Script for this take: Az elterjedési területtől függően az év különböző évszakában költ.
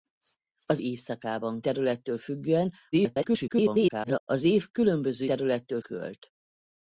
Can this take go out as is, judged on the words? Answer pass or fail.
fail